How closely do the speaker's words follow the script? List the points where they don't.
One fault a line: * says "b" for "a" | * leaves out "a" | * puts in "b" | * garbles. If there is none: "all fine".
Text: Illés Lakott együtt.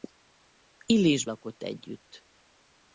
all fine